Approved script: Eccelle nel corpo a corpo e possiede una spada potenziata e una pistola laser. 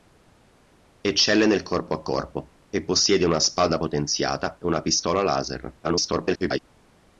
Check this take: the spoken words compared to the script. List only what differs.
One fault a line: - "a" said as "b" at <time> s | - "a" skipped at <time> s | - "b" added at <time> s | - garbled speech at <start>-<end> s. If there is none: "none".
- garbled speech at 5.8-6.6 s